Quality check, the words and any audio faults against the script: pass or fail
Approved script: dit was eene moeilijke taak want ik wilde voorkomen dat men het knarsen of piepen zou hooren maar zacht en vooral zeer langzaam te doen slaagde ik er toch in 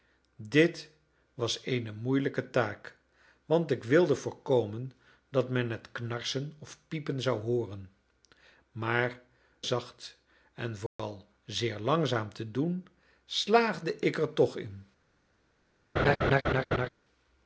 fail